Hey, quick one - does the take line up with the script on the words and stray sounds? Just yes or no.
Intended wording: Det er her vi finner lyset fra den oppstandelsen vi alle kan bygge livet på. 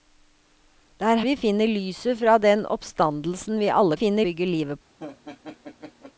no